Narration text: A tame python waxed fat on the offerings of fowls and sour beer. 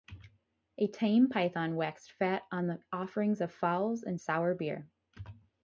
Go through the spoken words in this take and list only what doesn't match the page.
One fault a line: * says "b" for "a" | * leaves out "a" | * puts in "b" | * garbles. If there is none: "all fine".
all fine